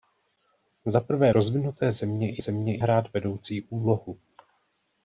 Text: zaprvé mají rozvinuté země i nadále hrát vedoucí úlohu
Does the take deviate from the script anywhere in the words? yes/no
yes